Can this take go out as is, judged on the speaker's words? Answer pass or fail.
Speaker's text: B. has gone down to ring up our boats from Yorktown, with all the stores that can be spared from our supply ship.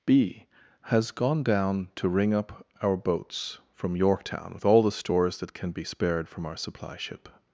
pass